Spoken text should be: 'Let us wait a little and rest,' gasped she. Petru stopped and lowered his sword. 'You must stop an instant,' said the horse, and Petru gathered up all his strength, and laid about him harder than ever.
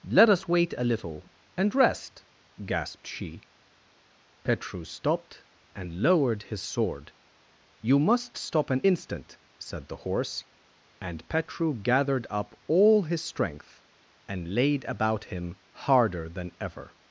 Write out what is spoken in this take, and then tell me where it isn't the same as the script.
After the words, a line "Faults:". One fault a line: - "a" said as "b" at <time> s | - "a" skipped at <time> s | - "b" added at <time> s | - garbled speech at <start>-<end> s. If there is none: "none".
'Let us wait a little and rest,' gasped she. Petru stopped and lowered his sword. 'You must stop an instant,' said the horse, and Petru gathered up all his strength, and laid about him harder than ever.
Faults:
none